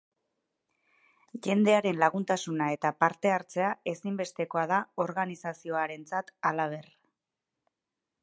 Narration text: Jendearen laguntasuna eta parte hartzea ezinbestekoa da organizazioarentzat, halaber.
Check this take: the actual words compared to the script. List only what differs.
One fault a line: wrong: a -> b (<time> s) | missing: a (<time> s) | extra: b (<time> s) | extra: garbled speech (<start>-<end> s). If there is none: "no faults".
no faults